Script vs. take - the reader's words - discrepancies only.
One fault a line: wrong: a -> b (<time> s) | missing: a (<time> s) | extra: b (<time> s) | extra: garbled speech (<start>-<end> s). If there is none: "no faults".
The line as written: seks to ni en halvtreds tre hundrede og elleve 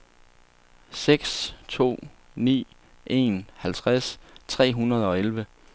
no faults